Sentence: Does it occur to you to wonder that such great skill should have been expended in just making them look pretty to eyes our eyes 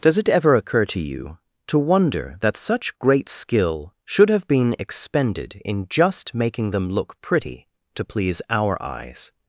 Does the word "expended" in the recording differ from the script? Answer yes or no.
no